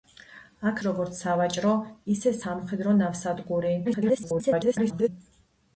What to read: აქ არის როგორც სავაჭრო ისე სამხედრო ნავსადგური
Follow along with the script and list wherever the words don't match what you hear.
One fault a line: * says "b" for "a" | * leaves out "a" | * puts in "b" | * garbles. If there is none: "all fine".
* leaves out "არის"
* garbles